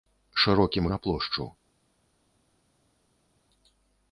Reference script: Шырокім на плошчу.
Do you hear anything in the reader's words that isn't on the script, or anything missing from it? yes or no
no